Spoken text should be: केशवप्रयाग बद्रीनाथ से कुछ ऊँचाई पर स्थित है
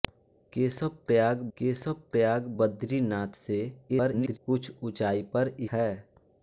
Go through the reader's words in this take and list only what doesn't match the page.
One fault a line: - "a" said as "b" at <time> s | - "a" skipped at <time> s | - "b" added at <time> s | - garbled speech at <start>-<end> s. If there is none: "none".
- "केशवप्रयाग" added at 1.6 s
- garbled speech at 3.9-4.4 s
- "स्थित" skipped at 5.5 s